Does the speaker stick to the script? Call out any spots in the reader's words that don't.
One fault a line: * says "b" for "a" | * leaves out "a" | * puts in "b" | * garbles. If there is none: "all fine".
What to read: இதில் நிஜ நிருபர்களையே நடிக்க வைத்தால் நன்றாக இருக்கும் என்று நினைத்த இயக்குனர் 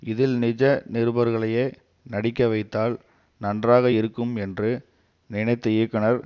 all fine